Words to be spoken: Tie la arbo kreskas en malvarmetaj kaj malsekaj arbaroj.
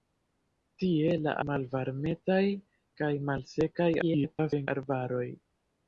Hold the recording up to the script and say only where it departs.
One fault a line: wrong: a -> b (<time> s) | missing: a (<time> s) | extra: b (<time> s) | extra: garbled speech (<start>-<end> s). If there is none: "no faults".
missing: arbo kreskas en (1.3 s)
extra: garbled speech (4.0-4.7 s)